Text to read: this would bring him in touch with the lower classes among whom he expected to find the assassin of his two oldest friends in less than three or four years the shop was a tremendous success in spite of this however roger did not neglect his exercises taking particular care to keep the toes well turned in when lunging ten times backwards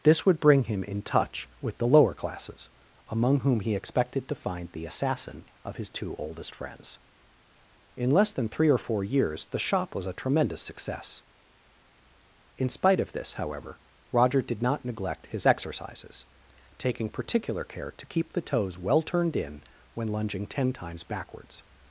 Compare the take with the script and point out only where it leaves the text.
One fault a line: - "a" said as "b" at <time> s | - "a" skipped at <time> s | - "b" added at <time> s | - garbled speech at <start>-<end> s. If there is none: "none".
none